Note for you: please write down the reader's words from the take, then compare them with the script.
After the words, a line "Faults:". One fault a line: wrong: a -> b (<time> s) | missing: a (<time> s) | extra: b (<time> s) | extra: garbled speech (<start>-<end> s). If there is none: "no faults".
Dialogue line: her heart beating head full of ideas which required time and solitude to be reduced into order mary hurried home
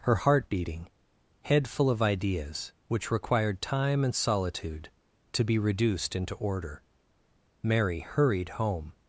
her heart beating head full of ideas which required time and solitude to be reduced into order mary hurried home
Faults:
no faults